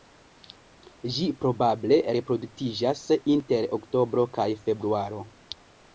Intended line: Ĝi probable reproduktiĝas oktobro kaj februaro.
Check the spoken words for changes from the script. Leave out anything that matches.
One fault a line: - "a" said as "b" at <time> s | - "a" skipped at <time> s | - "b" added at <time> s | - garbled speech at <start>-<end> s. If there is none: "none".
- "inter" added at 3.4 s